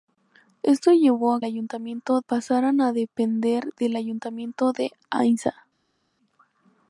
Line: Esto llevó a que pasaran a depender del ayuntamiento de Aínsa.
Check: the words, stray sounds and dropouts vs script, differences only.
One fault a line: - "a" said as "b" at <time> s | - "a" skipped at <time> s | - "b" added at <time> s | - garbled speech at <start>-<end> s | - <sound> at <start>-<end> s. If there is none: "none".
- "que" said as "ayuntamiento" at 1.4 s